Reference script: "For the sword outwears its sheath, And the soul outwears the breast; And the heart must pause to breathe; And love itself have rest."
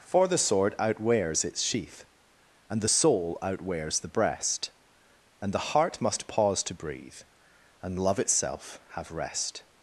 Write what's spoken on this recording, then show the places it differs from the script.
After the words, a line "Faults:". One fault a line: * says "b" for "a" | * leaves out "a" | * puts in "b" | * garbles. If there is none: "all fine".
"For the sword outwears its sheath, And the soul outwears the breast; And the heart must pause to breathe; And love itself have rest."
Faults:
all fine